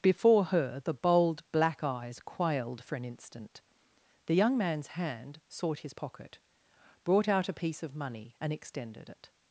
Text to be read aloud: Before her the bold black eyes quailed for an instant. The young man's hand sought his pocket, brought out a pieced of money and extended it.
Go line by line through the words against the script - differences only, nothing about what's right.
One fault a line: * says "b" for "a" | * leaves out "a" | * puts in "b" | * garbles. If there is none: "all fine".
* says "piece" for "pieced"